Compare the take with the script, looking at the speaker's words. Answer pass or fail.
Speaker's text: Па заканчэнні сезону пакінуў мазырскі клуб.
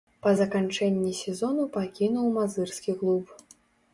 pass